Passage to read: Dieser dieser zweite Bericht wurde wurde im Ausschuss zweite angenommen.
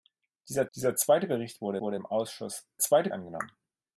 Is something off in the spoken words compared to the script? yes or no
no